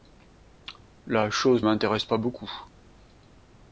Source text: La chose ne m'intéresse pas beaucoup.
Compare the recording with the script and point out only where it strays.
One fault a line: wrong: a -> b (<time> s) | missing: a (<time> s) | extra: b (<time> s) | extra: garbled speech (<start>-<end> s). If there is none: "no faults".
missing: ne (1.6 s)